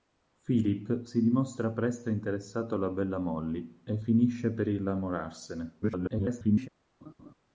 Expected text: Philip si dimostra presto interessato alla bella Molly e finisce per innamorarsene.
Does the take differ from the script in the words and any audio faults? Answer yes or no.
yes